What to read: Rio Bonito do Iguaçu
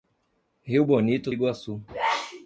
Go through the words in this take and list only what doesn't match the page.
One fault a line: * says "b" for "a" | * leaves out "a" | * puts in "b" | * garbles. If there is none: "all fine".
* leaves out "do"